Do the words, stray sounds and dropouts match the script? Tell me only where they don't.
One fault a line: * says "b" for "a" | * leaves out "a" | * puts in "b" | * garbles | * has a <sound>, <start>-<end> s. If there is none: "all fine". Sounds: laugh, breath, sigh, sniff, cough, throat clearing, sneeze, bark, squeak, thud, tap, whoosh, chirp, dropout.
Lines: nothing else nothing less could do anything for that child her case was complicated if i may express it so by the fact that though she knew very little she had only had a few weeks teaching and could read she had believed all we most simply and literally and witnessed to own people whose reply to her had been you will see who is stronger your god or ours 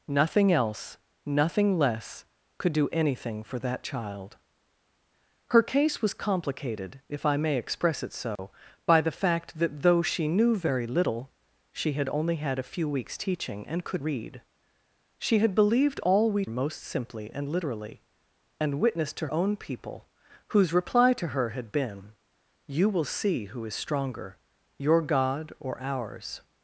* has a dropout, 8.4-8.4 s